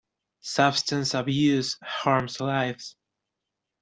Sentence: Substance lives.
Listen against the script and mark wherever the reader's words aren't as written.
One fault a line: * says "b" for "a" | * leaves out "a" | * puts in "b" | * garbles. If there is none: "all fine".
* puts in "abuse harms"